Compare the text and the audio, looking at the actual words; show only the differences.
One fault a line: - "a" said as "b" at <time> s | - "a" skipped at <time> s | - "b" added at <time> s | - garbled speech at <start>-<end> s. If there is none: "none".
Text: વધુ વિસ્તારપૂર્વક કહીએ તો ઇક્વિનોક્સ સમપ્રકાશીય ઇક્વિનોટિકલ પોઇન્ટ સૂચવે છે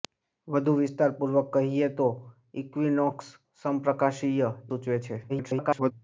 - "ઇક્વિનોટિકલ પોઇન્ટ" skipped at 4.5 s
- garbled speech at 5.3-5.9 s